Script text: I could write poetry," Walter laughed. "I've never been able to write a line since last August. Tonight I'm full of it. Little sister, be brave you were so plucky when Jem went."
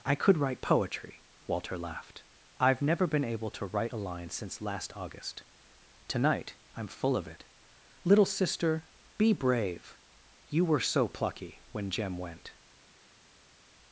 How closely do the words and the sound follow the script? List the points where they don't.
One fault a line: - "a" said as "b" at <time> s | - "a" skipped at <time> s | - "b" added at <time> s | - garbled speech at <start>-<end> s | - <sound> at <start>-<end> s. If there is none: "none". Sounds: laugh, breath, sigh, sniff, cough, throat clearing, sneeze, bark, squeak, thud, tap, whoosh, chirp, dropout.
none